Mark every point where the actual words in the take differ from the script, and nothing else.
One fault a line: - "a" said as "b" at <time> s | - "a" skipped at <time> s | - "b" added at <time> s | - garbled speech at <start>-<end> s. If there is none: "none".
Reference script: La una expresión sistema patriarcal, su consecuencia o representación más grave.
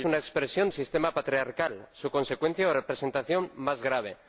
none